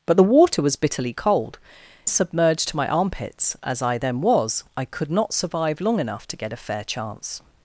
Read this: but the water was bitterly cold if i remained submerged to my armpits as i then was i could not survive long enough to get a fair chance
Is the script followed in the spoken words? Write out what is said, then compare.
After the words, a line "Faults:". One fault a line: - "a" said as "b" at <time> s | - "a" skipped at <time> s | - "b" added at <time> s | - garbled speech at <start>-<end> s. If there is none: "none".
but the water was bitterly cold submerged to my armpits as i then was i could not survive long enough to get a fair chance
Faults:
- "if i remained" skipped at 1.6 s